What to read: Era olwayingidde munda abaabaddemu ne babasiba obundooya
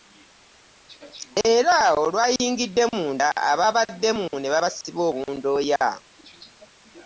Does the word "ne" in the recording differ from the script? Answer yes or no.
no